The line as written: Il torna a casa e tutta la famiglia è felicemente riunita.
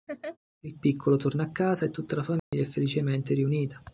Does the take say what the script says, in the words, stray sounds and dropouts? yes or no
no